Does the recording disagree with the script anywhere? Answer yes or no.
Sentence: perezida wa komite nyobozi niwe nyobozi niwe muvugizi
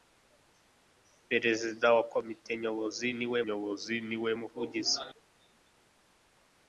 no